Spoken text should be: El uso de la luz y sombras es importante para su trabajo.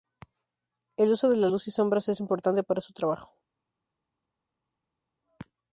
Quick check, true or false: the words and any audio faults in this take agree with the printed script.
true